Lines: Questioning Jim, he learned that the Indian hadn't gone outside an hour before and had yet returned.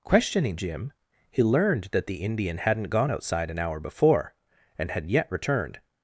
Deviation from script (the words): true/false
false